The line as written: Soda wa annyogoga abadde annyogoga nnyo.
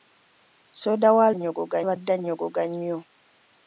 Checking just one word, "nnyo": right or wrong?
right